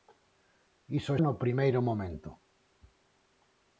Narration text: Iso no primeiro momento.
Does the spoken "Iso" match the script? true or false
true